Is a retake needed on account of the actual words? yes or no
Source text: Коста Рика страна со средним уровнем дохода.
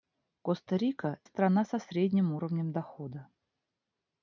no